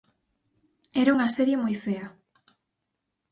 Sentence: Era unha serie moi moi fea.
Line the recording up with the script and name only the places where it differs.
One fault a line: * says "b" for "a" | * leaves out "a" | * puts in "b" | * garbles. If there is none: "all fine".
* leaves out "moi"